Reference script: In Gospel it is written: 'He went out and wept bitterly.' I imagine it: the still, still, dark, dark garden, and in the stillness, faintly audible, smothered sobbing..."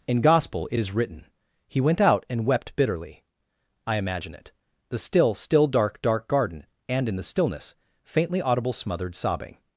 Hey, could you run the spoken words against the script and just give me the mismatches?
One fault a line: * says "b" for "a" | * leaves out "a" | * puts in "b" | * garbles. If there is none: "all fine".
all fine